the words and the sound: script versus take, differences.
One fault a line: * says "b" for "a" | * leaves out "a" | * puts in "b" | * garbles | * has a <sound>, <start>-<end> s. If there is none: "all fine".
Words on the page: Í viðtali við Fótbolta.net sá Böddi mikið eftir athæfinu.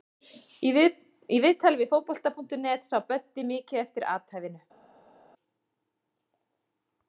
all fine